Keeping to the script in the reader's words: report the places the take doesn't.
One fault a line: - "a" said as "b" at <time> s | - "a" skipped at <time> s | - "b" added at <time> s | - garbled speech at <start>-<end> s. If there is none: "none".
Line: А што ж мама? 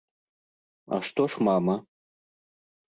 none